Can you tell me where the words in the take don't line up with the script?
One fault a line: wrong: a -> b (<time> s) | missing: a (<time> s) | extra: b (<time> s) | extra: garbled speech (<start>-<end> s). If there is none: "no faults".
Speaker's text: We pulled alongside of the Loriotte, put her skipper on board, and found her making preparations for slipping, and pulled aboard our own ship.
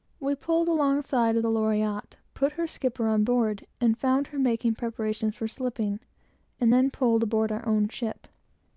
extra: then (6.7 s)